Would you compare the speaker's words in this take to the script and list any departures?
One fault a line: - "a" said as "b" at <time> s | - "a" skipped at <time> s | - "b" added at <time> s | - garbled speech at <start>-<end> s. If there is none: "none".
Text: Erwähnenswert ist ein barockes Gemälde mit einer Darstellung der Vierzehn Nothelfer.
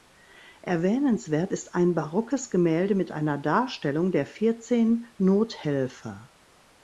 none